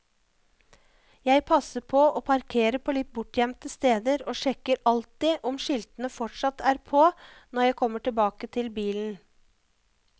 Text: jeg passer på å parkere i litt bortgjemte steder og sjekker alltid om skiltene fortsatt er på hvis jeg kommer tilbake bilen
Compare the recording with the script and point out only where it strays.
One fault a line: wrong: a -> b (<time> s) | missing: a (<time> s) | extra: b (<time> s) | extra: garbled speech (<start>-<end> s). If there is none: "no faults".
wrong: i -> på (2.9 s)
wrong: hvis -> når (7.1 s)
extra: til (8.6 s)